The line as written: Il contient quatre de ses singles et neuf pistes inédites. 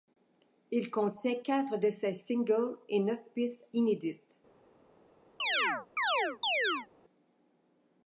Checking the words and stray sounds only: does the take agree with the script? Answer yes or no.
no